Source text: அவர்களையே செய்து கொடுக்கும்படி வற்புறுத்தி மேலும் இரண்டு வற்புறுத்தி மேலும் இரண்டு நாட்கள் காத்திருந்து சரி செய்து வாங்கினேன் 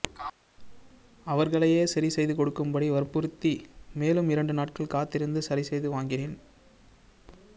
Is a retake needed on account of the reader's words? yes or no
yes